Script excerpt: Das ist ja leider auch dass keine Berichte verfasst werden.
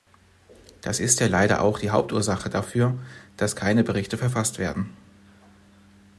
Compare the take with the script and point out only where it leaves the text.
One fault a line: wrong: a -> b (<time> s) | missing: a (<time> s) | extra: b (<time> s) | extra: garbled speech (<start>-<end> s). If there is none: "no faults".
extra: die Hauptursache dafür (1.8 s)